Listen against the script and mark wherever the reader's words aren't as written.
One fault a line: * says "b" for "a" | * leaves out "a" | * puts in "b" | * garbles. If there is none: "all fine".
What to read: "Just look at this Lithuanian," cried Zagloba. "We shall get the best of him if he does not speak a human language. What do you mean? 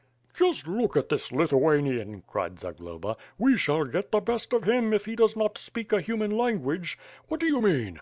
all fine